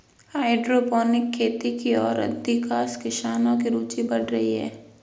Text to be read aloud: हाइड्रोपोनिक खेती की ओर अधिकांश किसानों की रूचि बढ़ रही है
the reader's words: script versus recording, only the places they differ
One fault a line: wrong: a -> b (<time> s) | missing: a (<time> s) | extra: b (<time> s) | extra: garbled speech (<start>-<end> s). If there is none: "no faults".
no faults